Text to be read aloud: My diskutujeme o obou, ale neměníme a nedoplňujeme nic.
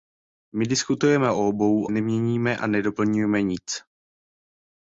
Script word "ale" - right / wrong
wrong